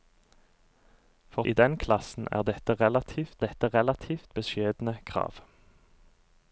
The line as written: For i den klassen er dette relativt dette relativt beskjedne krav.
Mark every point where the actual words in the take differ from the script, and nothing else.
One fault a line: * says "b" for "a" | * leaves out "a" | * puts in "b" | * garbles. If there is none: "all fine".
all fine